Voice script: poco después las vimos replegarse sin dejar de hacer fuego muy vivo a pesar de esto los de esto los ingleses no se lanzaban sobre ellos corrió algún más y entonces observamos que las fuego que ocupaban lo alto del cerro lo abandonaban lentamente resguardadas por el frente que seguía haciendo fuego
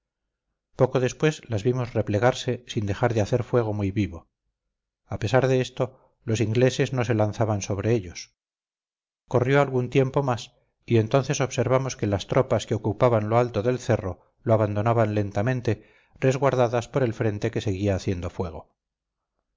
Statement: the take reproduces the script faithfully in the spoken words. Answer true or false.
false